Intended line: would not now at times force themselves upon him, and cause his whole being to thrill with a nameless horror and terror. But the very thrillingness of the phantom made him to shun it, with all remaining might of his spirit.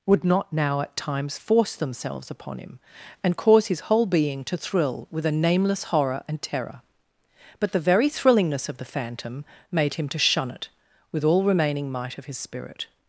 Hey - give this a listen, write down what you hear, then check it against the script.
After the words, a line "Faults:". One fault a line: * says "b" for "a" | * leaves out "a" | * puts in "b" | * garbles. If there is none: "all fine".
would not now at times force themselves upon him, and cause his whole being to thrill with a nameless horror and terror. But the very thrillingness of the phantom made him to shun it, with all remaining might of his spirit.
Faults:
all fine